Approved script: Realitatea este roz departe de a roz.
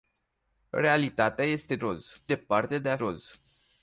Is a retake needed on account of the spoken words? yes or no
no